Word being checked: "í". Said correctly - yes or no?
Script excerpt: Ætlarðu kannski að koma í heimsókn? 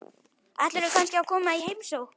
yes